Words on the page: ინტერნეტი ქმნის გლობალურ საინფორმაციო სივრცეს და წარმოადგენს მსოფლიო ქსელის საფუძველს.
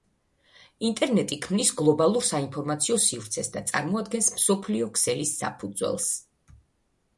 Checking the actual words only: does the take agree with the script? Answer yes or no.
yes